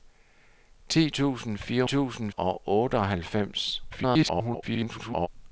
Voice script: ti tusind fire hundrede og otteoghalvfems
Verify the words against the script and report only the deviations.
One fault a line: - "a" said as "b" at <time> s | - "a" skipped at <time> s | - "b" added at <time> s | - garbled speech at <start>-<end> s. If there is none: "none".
- "hundrede" said as "tusind" at 1.8 s
- garbled speech at 3.9-5.3 s